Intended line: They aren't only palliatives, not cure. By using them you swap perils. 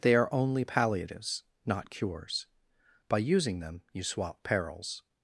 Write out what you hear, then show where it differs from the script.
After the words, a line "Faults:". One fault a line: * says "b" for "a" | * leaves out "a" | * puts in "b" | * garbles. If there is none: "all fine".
They are only palliatives, not cures. By using them you swap perils.
Faults:
* says "are" for "aren't"
* says "cures" for "cure"